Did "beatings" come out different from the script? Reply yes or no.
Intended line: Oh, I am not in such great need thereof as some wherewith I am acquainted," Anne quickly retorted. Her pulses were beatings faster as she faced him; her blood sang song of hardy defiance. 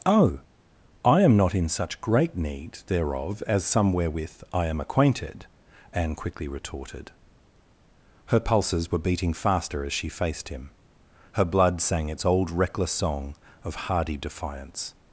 yes